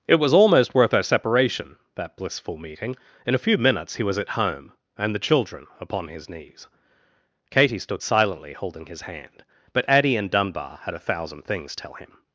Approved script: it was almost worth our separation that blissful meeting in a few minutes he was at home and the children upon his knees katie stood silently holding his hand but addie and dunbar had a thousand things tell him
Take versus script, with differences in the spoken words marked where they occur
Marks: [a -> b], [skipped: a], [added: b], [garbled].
it was almost worth our separation that blissful meeting in a few minutes he was at home and the children upon his knees katie stood silently holding his hand but addie and dunbar had a thousand things tell him